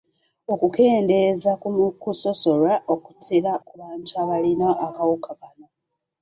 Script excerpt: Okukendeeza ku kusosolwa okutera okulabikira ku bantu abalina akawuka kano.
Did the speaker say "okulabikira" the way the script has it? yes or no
no